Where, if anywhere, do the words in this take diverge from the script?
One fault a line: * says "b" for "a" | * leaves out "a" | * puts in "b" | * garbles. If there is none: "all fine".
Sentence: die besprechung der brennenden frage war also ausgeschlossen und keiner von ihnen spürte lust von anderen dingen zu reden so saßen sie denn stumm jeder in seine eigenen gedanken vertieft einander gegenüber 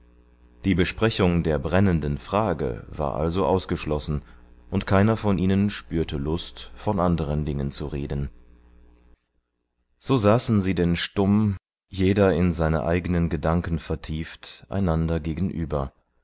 all fine